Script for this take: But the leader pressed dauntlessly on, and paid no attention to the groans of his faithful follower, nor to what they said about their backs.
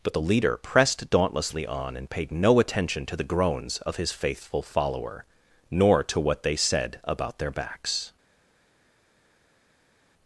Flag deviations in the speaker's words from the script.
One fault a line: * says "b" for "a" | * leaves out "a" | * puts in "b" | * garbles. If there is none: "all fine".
all fine